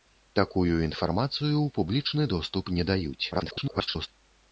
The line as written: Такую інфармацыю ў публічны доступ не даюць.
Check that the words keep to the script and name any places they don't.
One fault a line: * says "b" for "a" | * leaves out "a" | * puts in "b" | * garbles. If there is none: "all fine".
* garbles